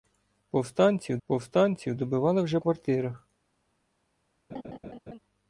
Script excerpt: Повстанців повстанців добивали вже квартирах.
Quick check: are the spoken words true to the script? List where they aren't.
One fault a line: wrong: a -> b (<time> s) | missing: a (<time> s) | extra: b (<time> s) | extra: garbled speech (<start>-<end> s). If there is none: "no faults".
no faults